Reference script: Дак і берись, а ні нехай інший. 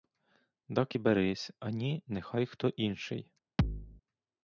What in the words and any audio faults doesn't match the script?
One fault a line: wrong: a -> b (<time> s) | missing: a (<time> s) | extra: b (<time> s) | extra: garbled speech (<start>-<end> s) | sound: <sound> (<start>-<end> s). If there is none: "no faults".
extra: хто (2.5 s)
sound: thud (3.6-4.0 s)